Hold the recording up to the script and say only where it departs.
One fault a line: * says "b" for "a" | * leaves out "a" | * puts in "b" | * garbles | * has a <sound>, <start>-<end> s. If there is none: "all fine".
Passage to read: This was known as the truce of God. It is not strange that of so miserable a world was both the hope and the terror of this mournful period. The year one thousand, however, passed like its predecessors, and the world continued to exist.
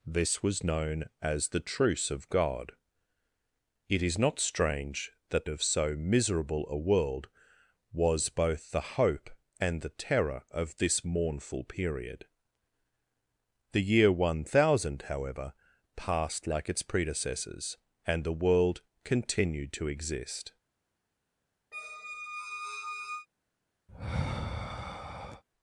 * has a squeak, 21.7-23.3 s
* has a sigh, 23.9-25.4 s